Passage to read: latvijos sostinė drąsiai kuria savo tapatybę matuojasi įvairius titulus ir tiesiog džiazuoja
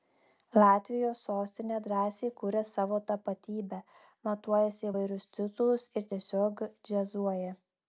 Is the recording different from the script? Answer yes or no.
no